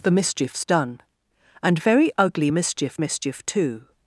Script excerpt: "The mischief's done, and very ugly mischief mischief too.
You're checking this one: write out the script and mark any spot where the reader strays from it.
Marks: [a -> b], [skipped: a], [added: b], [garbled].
"The mischief's done, and very ugly mischief mischief too.